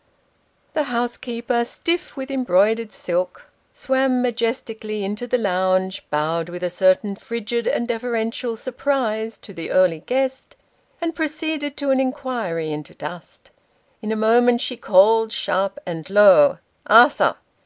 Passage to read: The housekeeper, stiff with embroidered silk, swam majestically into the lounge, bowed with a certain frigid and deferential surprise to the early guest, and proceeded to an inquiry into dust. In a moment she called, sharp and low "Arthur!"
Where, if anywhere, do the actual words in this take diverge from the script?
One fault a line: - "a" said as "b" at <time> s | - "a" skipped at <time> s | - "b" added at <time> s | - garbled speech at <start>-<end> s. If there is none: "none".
none